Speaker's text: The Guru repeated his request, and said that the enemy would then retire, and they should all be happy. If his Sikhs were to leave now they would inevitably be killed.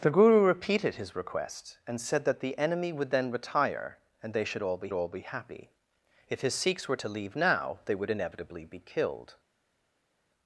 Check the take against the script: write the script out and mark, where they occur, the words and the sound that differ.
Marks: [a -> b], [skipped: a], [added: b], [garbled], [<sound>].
The Guru repeated his request, and said that the enemy would then retire, and they should all be [added: all be] happy. If his Sikhs were to leave now they would inevitably be killed.